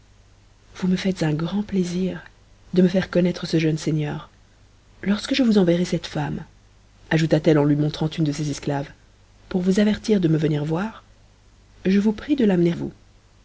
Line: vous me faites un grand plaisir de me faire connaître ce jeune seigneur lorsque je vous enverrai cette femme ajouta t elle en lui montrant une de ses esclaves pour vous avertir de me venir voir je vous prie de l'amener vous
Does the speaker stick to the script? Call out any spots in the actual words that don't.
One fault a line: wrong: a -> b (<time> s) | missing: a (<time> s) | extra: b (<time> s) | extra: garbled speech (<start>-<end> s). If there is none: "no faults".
no faults